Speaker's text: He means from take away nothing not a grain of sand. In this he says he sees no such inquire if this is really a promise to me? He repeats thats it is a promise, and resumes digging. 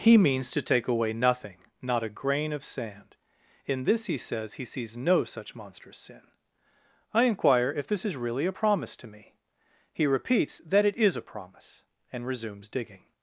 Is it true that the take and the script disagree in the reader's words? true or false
true